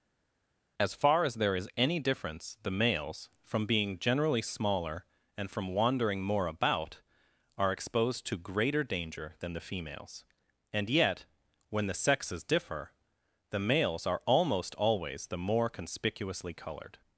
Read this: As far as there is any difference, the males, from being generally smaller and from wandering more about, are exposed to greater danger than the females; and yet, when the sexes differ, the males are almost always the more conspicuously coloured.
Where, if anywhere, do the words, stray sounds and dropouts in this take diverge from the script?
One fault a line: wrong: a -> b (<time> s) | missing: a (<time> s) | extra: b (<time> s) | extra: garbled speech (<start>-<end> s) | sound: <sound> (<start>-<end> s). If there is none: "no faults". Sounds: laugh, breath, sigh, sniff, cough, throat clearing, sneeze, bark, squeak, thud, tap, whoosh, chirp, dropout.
no faults